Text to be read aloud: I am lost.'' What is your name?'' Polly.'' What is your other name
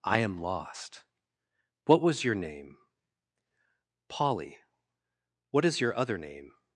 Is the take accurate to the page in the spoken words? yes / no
no